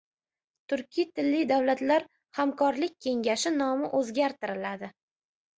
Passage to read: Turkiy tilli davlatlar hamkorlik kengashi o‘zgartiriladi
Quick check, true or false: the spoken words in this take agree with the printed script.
false